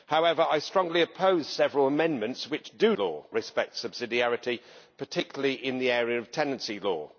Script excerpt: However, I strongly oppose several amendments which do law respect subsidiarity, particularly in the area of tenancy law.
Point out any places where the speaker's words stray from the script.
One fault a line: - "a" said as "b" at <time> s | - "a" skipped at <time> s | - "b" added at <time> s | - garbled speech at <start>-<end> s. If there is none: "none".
none